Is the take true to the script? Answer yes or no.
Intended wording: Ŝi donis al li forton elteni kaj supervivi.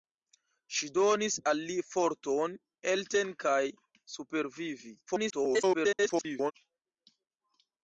no